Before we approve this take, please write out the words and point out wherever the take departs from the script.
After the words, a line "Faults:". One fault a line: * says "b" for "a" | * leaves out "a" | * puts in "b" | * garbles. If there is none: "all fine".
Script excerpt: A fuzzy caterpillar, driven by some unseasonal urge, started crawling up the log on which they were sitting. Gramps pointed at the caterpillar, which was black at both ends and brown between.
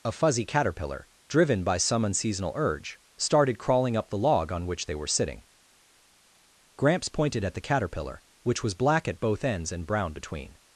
A fuzzy caterpillar, driven by some unseasonal urge, started crawling up the log on which they were sitting. Gramps pointed at the caterpillar, which was black at both ends and brown between.
Faults:
all fine